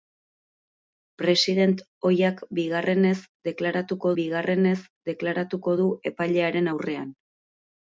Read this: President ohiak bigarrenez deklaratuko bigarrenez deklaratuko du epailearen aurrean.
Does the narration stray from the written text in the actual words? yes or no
no